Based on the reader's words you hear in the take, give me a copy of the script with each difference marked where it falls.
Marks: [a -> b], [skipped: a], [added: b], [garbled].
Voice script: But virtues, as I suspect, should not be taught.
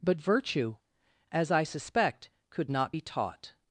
But [virtues, -> virtue] as I suspect, [should -> could] not be taught.